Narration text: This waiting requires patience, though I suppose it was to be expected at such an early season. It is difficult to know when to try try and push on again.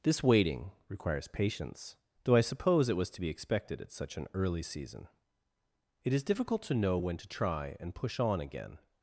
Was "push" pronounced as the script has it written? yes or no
yes